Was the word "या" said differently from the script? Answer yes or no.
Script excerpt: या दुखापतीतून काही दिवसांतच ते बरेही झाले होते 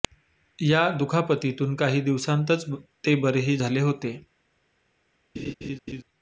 no